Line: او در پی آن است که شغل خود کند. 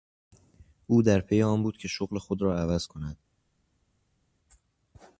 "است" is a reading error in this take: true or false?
true